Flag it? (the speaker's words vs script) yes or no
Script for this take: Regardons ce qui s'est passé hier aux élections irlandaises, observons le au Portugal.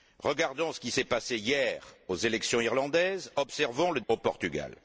no